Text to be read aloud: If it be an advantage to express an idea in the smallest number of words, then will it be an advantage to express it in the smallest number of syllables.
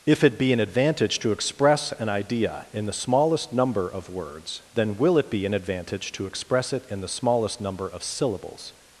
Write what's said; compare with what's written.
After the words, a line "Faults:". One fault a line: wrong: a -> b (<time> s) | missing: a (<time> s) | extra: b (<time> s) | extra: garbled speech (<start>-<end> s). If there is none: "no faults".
If it be an advantage to express an idea in the smallest number of words, then will it be an advantage to express it in the smallest number of syllables.
Faults:
no faults